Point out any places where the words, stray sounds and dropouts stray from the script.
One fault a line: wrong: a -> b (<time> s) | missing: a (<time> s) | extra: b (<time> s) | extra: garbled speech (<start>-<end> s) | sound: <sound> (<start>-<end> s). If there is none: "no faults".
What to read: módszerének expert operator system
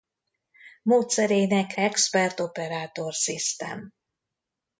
no faults